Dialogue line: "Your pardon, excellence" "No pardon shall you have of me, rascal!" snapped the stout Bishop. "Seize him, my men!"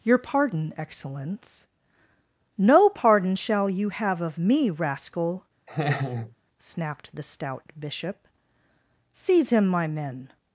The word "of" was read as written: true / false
true